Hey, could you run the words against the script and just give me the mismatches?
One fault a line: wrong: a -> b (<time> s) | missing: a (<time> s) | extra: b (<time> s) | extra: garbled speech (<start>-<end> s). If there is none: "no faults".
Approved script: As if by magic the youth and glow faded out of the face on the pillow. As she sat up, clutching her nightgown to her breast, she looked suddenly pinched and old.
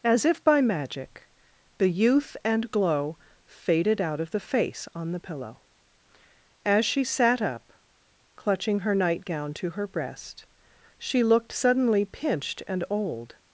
no faults